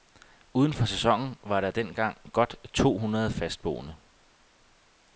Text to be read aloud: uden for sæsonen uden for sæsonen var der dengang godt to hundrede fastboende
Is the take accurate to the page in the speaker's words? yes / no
no